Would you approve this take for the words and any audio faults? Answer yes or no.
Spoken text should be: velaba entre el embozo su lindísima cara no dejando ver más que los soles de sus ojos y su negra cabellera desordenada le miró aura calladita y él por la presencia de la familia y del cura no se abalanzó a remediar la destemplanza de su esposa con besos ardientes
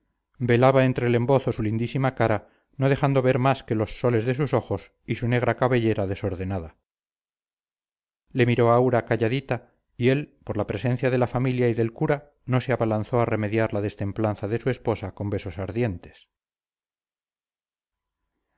yes